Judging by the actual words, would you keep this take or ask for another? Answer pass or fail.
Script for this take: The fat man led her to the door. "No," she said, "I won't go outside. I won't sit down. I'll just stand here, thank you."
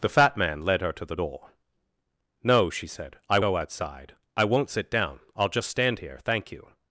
fail